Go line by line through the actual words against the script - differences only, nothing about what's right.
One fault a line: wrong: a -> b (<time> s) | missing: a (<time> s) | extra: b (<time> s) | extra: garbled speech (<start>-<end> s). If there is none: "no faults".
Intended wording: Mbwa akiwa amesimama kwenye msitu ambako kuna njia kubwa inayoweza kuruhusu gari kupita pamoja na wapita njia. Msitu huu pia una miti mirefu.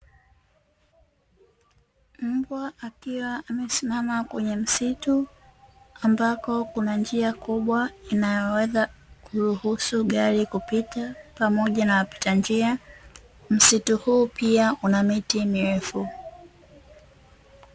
no faults